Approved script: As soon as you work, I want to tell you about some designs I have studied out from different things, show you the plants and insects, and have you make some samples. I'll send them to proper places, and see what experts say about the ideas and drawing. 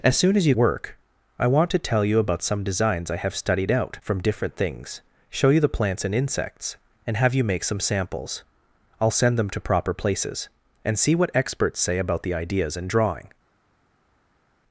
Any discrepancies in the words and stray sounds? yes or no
no